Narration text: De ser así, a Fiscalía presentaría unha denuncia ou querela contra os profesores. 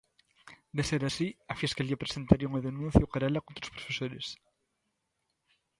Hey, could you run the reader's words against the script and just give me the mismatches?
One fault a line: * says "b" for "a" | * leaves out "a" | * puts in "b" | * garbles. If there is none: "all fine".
all fine